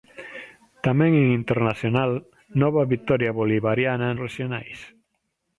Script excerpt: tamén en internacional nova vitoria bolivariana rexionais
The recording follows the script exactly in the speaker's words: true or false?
true